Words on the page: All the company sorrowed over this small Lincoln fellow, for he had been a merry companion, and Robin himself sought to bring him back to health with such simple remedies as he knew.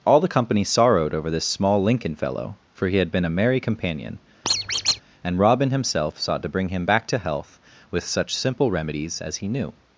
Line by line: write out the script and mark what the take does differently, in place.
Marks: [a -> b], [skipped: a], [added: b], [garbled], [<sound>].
All the company sorrowed over this small Lincoln fellow, for he had been a merry companion, [squeak] and Robin himself sought to bring him back to health with such simple remedies as he knew.